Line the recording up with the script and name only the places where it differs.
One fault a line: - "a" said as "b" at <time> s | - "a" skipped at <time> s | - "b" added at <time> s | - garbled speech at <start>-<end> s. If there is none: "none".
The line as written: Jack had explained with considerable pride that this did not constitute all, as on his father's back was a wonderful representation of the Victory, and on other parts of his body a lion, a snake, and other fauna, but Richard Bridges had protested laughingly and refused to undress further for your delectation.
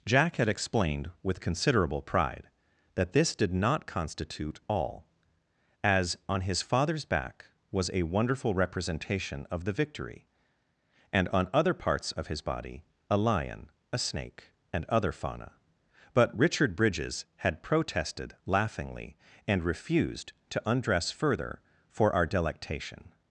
- "your" said as "our" at 22.1 s